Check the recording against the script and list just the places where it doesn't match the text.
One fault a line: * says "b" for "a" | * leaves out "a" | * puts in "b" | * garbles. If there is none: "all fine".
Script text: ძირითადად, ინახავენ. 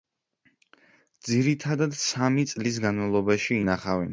* puts in "სამი წლის განმავლობაში"